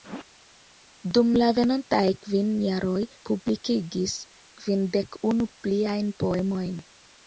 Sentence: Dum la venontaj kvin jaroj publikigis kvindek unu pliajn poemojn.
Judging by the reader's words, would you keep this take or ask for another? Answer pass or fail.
pass